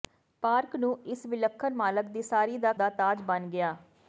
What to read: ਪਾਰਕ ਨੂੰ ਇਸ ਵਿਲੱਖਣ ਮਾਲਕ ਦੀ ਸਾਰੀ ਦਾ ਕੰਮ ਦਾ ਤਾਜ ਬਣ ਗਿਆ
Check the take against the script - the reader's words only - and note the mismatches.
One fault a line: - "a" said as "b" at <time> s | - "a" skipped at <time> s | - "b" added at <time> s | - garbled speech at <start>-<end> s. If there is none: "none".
- "ਕੰਮ" skipped at 2.7 s